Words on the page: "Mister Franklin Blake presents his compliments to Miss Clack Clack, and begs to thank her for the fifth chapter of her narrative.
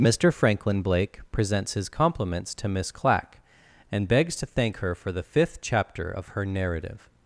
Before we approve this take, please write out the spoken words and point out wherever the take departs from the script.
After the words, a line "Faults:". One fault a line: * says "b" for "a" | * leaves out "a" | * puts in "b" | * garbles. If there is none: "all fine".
"Mister Franklin Blake presents his compliments to Miss Clack, and begs to thank her for the fifth chapter of her narrative.
Faults:
* leaves out "Clack"